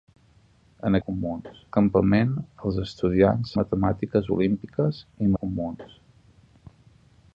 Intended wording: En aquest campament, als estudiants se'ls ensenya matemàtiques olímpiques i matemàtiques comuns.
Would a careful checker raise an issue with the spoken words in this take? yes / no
yes